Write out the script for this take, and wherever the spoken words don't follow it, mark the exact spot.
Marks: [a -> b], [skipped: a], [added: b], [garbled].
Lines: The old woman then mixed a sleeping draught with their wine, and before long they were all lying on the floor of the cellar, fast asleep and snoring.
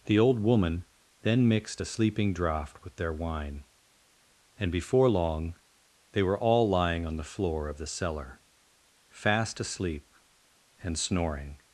The old woman then mixed a sleeping draught with their wine, and before long they were all lying on the floor of the cellar, fast asleep and snoring.